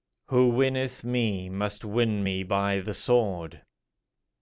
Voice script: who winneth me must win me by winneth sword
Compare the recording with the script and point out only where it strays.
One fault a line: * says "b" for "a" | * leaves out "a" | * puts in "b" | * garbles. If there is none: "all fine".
* says "the" for "winneth"